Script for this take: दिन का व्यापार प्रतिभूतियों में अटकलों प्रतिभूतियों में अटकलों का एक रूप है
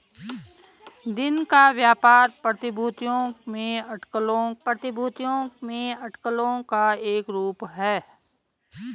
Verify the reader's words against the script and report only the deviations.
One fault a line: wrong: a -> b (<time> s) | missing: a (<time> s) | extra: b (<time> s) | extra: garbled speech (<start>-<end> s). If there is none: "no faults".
no faults